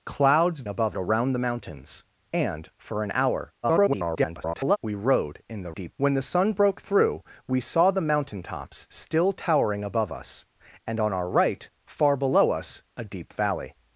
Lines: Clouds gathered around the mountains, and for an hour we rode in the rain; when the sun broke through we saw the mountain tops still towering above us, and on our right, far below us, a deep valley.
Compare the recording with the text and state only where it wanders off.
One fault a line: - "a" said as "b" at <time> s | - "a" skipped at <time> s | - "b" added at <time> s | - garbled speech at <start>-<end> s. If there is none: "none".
- "gathered" said as "above" at 0.7 s
- garbled speech at 3.6-4.8 s
- "rain" said as "deep" at 5.7 s